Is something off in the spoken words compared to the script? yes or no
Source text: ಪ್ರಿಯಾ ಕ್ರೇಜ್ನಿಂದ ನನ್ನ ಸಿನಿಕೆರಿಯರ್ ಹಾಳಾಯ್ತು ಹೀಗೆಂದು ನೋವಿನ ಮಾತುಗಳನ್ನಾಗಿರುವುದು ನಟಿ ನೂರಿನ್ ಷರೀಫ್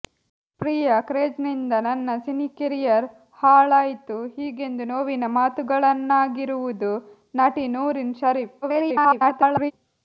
yes